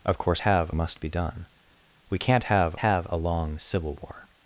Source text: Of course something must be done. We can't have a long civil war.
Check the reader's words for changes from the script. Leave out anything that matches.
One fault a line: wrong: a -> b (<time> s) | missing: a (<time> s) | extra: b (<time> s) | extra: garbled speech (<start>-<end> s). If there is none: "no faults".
wrong: something -> have (0.4 s)
extra: have (2.8 s)